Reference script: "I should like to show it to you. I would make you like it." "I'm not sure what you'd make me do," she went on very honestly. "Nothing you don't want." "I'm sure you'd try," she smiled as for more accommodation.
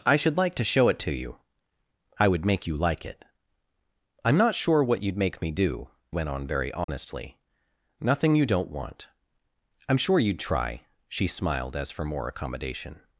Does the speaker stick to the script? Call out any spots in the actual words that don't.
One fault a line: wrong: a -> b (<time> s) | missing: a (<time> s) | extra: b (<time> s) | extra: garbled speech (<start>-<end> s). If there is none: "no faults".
missing: she (5.9 s)